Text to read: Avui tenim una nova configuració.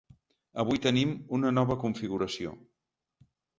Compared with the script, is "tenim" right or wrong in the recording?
right